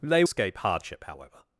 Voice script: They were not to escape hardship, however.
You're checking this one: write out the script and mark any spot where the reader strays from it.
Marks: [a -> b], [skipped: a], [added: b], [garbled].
They [skipped: were not to] escape hardship, however.